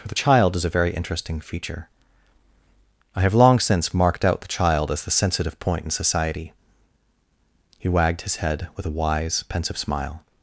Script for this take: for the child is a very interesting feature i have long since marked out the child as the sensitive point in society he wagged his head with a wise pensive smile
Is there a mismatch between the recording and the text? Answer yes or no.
no